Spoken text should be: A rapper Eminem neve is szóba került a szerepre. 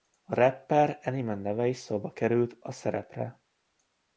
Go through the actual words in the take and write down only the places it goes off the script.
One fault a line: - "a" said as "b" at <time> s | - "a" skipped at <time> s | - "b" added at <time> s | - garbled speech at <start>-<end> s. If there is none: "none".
none